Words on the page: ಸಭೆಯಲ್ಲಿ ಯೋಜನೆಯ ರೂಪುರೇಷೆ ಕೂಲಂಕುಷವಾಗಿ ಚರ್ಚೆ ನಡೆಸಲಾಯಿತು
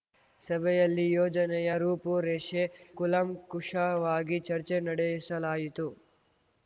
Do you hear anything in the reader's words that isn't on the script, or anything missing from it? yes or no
no